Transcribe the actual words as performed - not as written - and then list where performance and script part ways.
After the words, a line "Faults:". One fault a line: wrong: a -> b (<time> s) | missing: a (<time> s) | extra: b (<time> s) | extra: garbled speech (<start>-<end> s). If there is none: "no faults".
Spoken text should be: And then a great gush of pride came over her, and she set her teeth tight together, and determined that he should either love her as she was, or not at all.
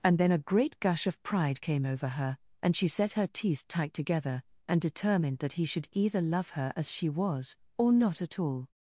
And then a great gush of pride came over her, and she set her teeth tight together, and determined that he should either love her as she was, or not at all.
Faults:
no faults